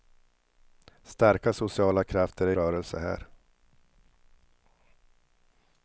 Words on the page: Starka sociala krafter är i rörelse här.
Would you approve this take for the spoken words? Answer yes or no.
no